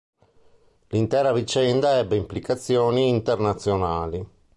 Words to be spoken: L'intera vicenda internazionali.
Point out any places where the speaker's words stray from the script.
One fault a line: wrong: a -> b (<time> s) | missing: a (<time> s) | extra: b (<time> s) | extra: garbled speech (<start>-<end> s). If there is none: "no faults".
extra: ebbe implicazioni (2.0 s)